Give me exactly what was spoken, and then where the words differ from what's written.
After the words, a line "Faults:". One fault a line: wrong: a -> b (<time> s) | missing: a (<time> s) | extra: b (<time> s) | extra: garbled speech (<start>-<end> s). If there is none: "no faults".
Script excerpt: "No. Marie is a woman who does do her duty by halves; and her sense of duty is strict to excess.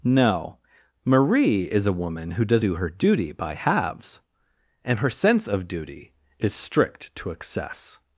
"No. Marie is a woman who does do her duty by halves; and her sense of duty is strict to excess.
Faults:
no faults